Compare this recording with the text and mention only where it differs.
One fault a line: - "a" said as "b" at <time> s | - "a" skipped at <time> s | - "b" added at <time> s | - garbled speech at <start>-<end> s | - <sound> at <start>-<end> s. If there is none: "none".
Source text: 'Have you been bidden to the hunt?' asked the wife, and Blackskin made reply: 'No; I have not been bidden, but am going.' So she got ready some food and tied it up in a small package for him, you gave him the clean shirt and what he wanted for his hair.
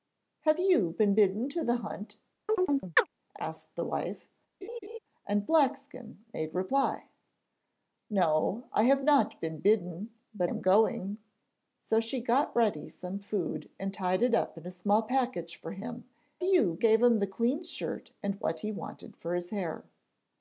- chirp at 2.5-3.1 s
- laugh at 4.6-5.0 s